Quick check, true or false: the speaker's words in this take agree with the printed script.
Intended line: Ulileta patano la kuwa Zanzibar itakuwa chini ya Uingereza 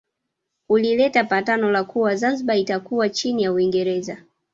true